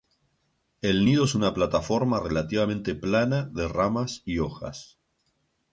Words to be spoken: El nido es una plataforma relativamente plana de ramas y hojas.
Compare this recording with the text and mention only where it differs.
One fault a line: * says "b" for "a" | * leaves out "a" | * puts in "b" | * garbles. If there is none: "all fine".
all fine